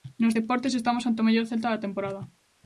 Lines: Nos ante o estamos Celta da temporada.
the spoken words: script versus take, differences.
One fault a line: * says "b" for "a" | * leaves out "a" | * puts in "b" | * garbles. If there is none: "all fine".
* puts in "deportes estamos"
* says "mellor" for "estamos"